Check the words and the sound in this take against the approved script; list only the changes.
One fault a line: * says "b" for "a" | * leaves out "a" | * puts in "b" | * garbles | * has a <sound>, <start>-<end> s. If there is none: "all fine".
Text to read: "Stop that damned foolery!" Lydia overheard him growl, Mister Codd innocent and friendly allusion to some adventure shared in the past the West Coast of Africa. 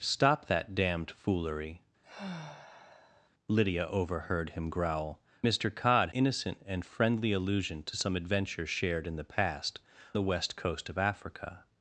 * has a sigh, 2.0-3.3 s